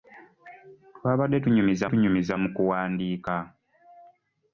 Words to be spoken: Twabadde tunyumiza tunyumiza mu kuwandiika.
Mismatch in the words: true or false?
false